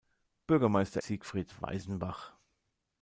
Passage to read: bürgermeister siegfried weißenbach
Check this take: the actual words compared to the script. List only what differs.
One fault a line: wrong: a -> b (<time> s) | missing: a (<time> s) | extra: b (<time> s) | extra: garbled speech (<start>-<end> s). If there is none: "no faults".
no faults